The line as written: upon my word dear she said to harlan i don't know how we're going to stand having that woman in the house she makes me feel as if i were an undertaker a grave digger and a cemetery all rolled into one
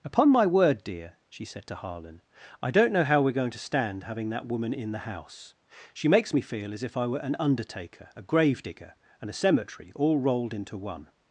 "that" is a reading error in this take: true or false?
false